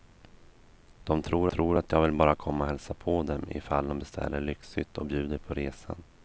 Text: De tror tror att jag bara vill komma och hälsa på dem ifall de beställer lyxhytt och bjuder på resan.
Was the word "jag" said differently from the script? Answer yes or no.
no